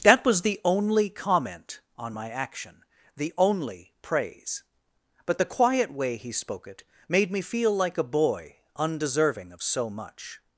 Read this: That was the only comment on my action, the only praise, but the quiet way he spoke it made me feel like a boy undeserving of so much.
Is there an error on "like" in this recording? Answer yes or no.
no